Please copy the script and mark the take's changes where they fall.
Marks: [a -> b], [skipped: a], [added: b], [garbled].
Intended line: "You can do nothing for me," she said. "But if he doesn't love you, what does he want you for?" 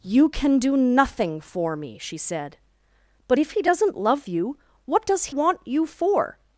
"You can do nothing for me," she said. "But if he doesn't love you, what does [skipped: he] want you for?"